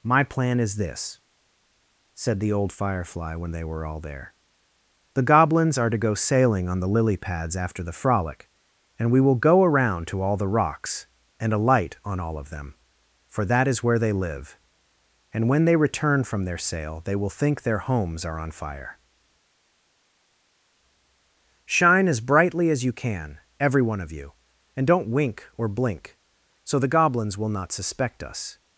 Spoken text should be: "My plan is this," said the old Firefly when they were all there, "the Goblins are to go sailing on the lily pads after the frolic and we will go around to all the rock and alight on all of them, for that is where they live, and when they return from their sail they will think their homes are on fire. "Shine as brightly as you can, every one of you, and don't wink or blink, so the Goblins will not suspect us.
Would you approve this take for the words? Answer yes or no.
no